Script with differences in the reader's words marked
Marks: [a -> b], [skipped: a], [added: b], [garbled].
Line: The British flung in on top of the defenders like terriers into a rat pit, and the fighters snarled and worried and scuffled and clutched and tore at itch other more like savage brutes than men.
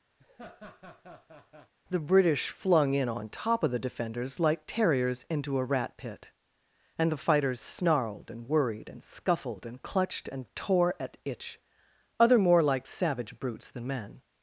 The British flung in on top of the defenders like terriers into a rat pit, and the fighters snarled and worried and scuffled and clutched and tore at itch other more like savage brutes than men.